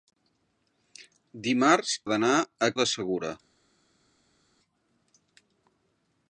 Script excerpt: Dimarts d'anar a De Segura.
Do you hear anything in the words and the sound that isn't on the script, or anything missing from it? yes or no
no